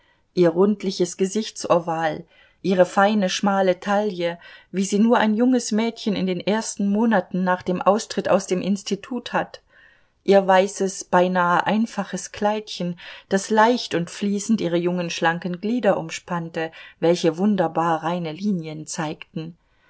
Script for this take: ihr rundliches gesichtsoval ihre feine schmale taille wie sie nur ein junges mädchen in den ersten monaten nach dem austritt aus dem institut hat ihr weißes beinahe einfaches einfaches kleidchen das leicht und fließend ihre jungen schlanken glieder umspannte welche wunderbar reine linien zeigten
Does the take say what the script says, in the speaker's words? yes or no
no